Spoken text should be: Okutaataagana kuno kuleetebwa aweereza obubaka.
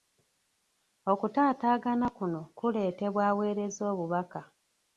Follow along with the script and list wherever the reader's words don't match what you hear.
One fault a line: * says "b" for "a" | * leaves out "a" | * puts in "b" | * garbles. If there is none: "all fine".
all fine